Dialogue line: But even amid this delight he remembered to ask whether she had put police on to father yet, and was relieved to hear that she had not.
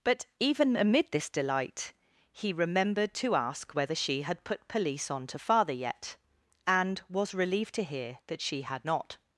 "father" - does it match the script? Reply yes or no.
yes